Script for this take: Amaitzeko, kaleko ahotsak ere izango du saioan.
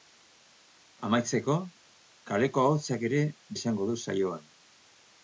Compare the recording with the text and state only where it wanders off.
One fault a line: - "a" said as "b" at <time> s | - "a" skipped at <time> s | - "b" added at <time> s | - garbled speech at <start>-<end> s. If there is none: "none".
none